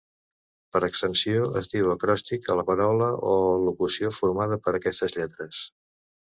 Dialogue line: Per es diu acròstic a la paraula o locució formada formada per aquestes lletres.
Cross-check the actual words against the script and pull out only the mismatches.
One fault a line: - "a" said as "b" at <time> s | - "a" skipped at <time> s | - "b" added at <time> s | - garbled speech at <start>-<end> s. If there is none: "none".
- "extensió" added at 0.9 s
- "formada" skipped at 4.6 s